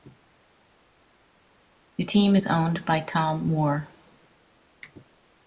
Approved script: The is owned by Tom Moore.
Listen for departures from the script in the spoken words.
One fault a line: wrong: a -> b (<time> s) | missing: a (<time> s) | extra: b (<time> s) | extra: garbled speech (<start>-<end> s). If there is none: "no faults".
extra: team (2.0 s)